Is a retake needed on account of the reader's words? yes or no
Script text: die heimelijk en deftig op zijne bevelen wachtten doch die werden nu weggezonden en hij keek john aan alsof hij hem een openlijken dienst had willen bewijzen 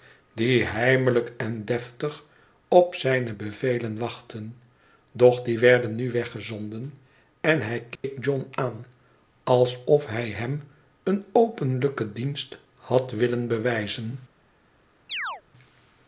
no